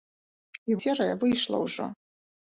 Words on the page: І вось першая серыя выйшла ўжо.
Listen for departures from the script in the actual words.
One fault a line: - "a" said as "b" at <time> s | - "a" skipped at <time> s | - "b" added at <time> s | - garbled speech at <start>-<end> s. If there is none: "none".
- "вось першая" skipped at 0.8 s